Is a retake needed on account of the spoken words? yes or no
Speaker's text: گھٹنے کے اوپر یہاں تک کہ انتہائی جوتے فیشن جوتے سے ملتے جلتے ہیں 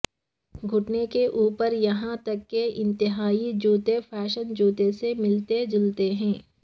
no